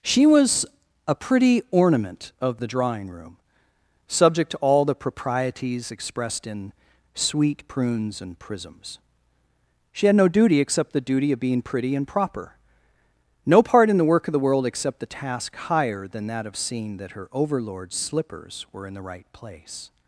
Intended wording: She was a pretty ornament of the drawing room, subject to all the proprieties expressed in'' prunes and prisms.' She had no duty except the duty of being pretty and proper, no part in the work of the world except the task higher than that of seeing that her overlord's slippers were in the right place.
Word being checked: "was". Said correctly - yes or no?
yes